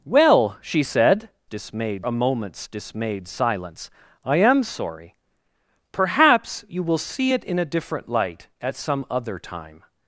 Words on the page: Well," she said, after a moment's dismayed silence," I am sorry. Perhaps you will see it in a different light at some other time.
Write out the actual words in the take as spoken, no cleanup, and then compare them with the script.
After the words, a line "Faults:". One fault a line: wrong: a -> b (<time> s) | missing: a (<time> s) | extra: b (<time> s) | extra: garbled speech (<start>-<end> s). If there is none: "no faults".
Well," she said, dismayed a moment's dismayed silence," I am sorry. Perhaps you will see it in a different light at some other time.
Faults:
wrong: after -> dismayed (1.4 s)